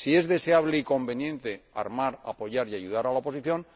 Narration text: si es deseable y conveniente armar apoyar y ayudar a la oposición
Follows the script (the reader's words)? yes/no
yes